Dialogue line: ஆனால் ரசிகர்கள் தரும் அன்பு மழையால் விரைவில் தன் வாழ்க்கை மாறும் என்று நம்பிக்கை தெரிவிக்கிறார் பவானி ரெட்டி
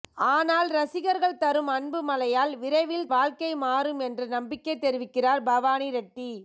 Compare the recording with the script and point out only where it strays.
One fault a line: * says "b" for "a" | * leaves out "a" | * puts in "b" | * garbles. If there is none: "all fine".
* leaves out "தன்"